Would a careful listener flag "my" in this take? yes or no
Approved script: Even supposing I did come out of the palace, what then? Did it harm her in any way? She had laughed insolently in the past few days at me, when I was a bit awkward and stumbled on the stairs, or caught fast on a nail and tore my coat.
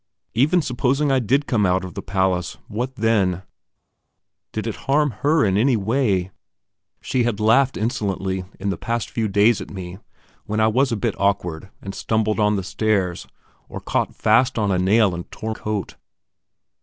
yes